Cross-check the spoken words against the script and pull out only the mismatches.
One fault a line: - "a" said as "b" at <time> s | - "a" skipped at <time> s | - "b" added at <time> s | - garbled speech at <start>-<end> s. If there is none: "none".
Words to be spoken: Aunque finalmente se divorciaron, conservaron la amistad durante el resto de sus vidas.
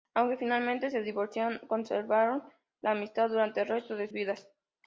- "sus" skipped at 4.1 s